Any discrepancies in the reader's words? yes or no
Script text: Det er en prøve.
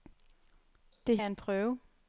no